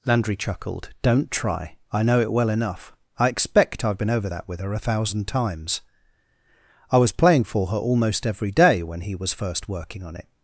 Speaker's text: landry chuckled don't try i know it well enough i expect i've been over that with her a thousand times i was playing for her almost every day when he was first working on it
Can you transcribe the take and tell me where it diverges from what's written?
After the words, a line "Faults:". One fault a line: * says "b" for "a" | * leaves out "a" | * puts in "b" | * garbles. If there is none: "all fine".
landry chuckled don't try i know it well enough i expect i've been over that with her a thousand times i was playing for her almost every day when he was first working on it
Faults:
all fine